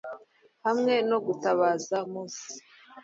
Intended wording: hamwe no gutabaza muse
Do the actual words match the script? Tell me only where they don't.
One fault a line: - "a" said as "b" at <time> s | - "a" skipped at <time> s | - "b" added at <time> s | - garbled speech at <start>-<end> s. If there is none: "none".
none